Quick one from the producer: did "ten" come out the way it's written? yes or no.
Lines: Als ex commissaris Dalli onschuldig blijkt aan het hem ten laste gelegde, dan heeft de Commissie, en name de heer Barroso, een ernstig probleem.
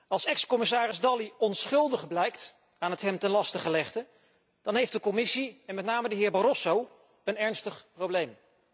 yes